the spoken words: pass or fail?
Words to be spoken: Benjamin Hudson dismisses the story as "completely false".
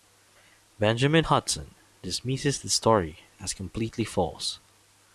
pass